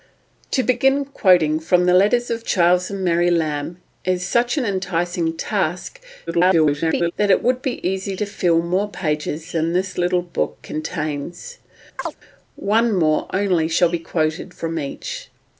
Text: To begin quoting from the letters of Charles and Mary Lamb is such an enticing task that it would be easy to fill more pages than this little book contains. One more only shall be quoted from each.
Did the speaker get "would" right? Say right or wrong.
right